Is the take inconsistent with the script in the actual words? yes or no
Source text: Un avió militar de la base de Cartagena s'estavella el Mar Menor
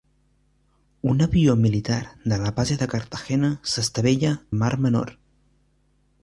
no